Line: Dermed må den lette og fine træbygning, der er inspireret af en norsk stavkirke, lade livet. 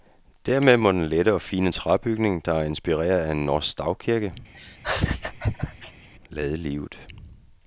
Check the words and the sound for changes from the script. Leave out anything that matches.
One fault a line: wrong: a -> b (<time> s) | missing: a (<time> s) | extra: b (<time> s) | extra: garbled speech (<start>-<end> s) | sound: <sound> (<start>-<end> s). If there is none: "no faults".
sound: laugh (4.5-6.1 s)